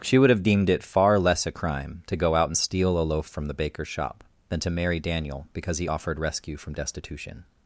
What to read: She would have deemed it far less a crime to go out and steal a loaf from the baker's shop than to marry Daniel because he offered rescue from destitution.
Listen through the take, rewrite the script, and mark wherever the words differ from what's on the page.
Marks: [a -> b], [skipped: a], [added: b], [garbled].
She would have deemed it far less a crime to go out and steal a loaf from the baker's shop than to marry Daniel because he offered rescue from destitution.